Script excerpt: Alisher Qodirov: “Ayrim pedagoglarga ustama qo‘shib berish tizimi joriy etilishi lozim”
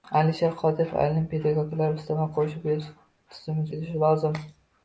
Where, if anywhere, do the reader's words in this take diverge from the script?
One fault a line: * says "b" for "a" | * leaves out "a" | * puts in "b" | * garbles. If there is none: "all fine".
* leaves out "joriy"